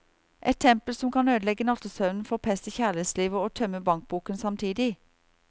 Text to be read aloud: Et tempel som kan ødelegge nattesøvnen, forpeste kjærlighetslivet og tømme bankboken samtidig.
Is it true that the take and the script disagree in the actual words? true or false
false